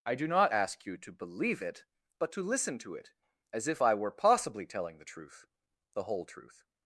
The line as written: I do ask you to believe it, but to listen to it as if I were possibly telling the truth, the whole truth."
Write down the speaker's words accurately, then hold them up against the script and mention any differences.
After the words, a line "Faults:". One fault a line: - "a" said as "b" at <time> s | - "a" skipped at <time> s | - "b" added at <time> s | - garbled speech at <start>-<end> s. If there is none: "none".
I do not ask you to believe it, but to listen to it as if I were possibly telling the truth, the whole truth."
Faults:
- "not" added at 0.3 s